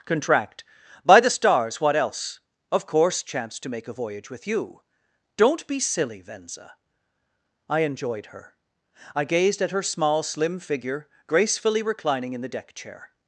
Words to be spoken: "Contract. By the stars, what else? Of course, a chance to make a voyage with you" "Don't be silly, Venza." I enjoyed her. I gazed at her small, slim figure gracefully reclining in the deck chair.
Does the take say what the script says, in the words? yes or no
no